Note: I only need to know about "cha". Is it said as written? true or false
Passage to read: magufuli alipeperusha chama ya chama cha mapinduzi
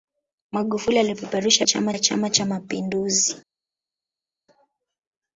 true